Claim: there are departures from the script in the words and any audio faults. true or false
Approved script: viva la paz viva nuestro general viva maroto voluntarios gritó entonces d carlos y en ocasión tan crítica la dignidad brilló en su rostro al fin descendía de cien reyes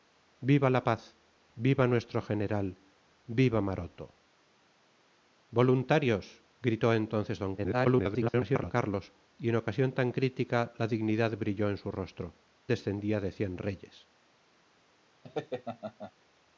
true